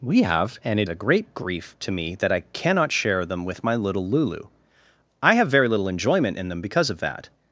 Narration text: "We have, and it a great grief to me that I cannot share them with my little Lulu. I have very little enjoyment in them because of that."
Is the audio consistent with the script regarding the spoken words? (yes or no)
yes